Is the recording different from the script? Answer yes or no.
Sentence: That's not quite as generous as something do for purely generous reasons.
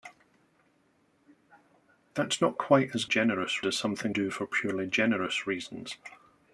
no